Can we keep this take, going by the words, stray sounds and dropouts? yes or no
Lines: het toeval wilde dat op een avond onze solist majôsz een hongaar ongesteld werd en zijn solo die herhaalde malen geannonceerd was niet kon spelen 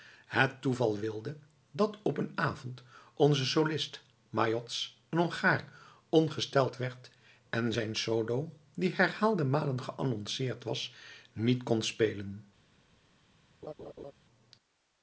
no